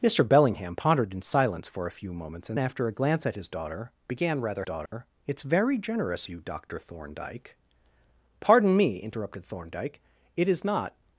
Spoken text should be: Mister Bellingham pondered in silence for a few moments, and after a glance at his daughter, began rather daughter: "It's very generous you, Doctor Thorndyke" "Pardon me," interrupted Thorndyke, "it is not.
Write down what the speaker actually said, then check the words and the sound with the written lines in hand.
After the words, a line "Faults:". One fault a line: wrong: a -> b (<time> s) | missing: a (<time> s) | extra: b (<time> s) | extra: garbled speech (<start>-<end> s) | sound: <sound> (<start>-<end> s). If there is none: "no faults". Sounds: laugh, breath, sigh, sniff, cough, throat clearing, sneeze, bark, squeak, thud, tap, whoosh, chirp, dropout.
Mister Bellingham pondered in silence for a few moments, and after a glance at his daughter, began rather daughter: "It's very generous you, Doctor Thorndyke" "Pardon me," interrupted Thorndyke, "it is not.
Faults:
sound: dropout (4.9-4.9 s)